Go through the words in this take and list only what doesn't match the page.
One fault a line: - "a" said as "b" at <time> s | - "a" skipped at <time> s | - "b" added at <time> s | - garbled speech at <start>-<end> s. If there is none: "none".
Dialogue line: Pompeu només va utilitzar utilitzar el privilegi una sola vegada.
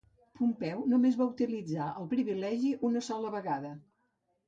- "utilitzar" skipped at 1.9 s